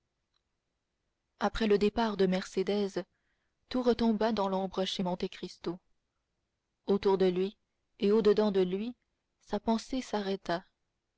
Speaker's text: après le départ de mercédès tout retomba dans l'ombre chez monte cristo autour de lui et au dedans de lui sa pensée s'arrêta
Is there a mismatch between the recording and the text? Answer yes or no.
no